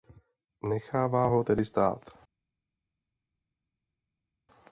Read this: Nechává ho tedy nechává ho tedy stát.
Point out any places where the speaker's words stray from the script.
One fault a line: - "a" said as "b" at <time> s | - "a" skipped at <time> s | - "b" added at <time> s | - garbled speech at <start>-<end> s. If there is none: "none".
- "nechává ho tedy" skipped at 1.7 s